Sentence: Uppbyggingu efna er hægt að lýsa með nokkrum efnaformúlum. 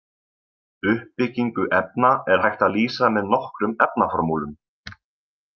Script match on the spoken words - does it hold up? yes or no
yes